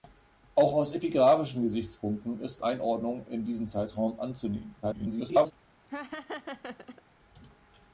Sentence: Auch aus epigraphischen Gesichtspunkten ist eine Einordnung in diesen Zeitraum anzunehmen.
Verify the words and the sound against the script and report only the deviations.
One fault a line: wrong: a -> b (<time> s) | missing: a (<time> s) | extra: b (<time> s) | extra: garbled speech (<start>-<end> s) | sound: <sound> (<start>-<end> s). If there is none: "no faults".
missing: eine (2.6 s)
extra: garbled speech (4.8-5.5 s)
sound: laugh (5.9-7.0 s)